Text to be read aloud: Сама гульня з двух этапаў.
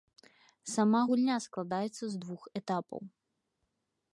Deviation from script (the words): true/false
true